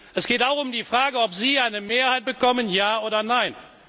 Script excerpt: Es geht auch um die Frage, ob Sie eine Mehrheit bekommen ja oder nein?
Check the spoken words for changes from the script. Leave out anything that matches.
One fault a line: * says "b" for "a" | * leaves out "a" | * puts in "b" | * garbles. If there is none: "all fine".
all fine